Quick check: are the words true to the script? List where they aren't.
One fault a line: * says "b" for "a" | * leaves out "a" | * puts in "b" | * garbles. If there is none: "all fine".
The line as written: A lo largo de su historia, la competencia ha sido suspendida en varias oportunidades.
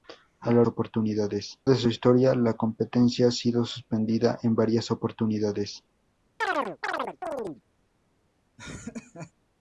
* says "oportunidades" for "largo"